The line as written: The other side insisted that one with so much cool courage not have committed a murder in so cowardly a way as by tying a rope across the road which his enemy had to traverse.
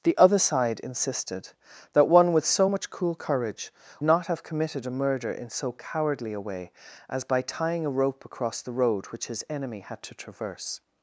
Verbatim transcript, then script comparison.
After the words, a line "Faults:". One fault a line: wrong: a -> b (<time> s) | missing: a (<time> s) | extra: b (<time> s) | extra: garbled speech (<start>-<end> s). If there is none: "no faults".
The other side insisted that one with so much cool courage not have committed a murder in so cowardly a way as by tying a rope across the road which his enemy had to traverse.
Faults:
no faults